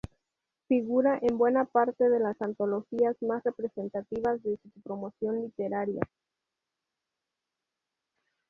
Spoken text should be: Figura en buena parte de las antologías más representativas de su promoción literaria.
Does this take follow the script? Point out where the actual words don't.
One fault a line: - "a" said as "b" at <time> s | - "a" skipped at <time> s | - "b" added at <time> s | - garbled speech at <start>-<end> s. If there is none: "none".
- "su" added at 4.7 s